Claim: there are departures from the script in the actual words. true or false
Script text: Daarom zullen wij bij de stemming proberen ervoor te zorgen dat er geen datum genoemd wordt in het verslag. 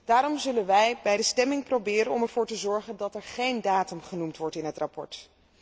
false